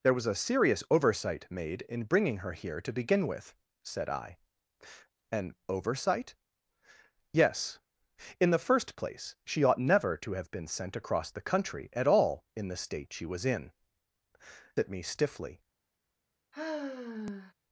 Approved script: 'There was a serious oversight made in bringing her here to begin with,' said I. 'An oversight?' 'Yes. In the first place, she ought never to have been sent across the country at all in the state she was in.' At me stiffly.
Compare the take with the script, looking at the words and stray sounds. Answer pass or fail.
fail